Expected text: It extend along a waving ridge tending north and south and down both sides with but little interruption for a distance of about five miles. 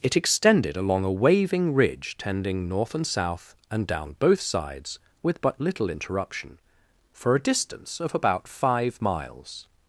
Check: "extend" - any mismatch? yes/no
yes